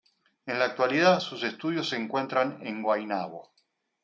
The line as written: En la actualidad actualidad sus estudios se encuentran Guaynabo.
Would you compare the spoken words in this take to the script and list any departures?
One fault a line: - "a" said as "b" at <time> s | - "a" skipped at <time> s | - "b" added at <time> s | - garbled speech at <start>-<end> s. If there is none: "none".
- "actualidad" skipped at 1.2 s
- "en" added at 2.6 s